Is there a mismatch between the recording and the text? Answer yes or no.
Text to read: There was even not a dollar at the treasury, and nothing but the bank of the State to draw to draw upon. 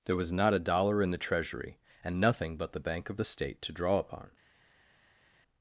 yes